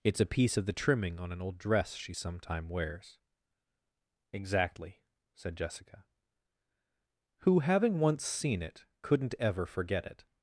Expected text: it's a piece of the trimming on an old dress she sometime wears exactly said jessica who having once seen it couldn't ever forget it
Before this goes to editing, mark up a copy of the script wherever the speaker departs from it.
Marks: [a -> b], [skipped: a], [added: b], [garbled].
it's a piece of the trimming on an old dress she sometime wears exactly said jessica who having once seen it couldn't ever forget it